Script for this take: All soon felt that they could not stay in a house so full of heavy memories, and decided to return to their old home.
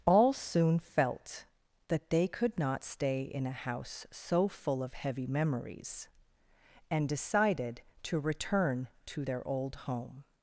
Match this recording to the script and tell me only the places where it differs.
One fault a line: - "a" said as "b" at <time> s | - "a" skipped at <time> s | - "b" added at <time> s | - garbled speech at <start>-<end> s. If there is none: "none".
none